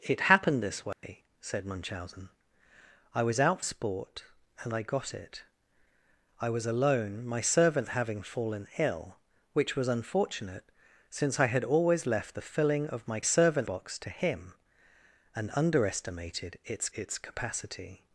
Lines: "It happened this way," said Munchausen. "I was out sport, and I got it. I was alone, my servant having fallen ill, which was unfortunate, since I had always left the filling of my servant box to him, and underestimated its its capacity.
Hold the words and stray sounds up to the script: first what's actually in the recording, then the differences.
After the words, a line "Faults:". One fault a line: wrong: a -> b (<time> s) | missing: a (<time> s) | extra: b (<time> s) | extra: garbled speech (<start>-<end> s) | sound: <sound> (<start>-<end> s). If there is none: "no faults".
"It happened this way," said Munchausen. "I was out sport, and I got it. I was alone, my servant having fallen ill, which was unfortunate, since I had always left the filling of my servant box to him, and underestimated its its capacity.
Faults:
sound: dropout (0.9-1.0 s)